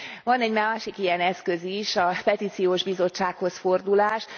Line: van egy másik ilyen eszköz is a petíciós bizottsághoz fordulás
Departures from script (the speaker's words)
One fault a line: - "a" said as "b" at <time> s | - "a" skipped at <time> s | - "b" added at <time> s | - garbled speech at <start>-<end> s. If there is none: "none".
none